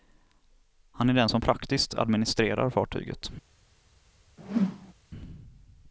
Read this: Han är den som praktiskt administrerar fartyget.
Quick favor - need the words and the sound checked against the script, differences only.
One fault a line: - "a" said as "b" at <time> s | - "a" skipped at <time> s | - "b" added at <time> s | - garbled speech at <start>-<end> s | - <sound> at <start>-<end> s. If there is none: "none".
- whoosh at 4.4-4.9 s